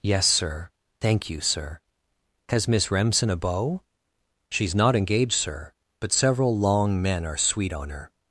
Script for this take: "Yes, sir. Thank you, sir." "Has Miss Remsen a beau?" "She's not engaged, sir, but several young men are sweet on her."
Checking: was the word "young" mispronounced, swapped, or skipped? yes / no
yes